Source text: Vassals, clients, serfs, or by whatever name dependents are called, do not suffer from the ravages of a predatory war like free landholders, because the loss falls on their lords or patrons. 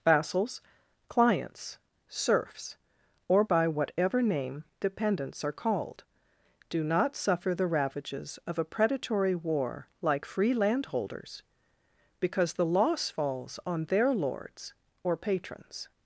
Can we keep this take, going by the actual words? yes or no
no